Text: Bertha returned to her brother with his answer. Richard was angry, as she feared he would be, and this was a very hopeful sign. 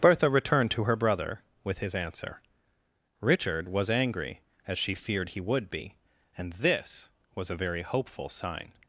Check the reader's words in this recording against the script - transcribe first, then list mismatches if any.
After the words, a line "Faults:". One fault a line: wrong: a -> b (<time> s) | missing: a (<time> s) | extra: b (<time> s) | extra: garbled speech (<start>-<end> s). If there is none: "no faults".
Bertha returned to her brother with his answer. Richard was angry, as she feared he would be, and this was a very hopeful sign.
Faults:
no faults